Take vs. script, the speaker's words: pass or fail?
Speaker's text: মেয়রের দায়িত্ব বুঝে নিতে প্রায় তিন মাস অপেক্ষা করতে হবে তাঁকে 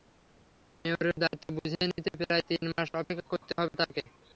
pass